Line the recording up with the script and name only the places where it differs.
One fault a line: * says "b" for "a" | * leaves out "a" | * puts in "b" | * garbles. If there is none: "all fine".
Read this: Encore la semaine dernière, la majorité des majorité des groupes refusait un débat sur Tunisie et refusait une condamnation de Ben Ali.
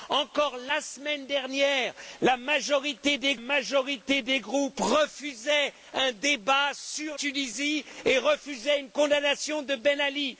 all fine